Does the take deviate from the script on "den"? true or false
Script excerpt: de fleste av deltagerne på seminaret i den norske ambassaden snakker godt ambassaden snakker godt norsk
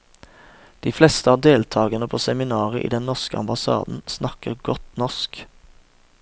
false